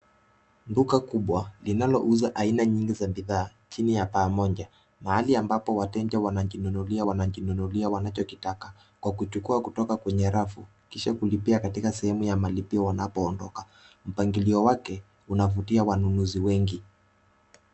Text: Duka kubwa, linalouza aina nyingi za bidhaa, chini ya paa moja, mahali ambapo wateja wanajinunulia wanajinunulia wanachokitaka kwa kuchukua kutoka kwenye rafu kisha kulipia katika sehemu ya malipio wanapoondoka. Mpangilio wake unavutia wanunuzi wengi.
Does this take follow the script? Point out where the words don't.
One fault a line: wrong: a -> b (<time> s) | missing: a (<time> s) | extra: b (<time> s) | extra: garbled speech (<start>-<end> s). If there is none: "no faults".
no faults